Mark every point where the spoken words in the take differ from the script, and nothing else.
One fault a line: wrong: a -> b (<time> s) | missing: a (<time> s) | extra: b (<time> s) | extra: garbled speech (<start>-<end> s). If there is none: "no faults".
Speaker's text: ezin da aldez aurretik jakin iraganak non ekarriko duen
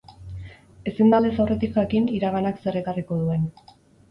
wrong: non -> zer (2.7 s)